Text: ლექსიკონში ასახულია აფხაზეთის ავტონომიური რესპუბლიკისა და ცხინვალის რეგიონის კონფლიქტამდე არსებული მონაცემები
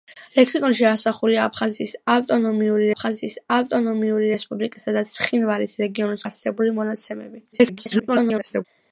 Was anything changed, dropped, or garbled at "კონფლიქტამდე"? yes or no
yes